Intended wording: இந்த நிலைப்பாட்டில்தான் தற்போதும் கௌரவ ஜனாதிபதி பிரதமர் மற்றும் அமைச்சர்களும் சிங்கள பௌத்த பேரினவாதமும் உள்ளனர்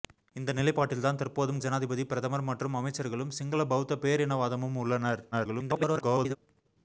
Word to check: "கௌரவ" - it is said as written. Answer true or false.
false